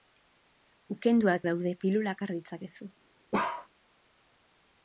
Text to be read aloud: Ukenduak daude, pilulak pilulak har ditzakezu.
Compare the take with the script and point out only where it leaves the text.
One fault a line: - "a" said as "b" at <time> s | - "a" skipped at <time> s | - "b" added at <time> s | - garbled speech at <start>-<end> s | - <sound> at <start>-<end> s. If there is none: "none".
- "pilulak" skipped at 2.2 s
- bark at 3.3-3.7 s